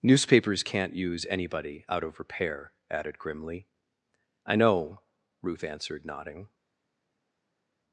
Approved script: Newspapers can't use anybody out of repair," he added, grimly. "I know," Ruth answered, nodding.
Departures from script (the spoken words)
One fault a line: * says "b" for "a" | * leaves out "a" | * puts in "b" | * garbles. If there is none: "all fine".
* leaves out "he"